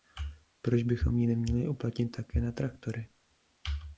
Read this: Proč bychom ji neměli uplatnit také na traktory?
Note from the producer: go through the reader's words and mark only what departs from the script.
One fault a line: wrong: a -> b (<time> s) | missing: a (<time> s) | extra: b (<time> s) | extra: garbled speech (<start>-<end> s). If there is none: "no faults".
no faults